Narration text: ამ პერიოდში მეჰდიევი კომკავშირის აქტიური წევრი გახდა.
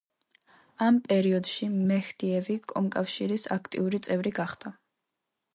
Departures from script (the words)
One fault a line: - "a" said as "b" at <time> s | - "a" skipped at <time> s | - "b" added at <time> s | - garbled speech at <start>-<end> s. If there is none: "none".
none